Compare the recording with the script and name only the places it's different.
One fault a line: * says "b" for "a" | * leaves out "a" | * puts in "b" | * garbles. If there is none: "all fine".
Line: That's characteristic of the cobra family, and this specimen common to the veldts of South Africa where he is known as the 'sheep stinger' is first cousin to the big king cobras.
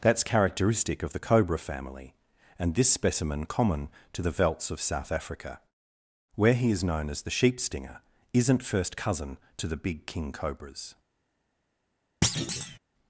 * says "isn't" for "is"